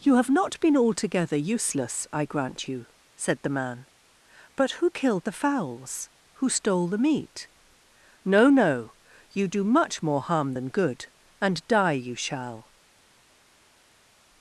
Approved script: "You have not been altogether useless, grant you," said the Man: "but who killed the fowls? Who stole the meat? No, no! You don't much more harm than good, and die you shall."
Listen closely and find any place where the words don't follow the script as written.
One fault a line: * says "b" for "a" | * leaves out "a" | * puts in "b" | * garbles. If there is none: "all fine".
* puts in "I"
* says "do" for "don't"